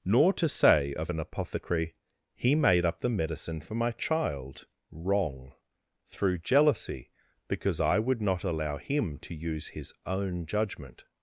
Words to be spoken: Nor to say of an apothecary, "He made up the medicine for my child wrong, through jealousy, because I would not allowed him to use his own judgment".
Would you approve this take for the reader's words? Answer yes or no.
no